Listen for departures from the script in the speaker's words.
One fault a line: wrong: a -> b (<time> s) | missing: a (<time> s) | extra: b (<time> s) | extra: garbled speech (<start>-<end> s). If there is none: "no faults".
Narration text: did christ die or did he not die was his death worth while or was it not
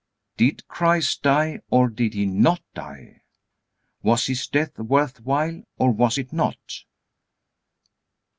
no faults